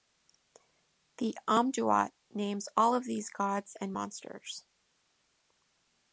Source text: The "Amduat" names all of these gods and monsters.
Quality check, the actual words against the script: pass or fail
pass